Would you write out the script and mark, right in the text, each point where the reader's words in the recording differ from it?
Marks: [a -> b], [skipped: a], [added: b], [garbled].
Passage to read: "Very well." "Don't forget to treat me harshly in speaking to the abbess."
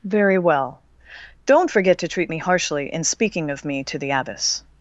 "Very well." "Don't forget to treat me harshly in speaking [added: of me] to the abbess."